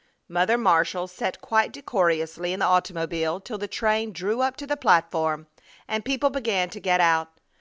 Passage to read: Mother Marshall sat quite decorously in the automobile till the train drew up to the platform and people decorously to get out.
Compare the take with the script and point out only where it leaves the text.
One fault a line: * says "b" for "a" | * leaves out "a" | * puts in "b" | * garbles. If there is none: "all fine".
* says "began" for "decorously"